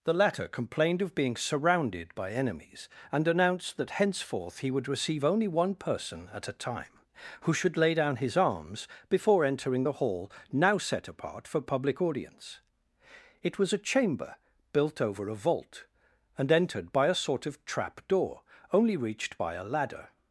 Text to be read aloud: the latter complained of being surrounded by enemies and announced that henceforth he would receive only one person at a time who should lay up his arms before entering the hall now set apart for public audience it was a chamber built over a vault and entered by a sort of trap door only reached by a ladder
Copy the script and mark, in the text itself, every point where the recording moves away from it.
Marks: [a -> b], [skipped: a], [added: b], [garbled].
the latter complained of being surrounded by enemies and announced that henceforth he would receive only one person at a time who should lay [up -> down] his arms before entering the hall now set apart for public audience it was a chamber built over a vault and entered by a sort of trap door only reached by a ladder